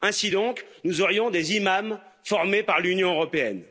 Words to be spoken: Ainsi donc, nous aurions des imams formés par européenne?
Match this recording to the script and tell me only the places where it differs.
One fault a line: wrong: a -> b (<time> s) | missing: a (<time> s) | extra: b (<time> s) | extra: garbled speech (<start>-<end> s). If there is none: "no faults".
extra: l'Union (2.8 s)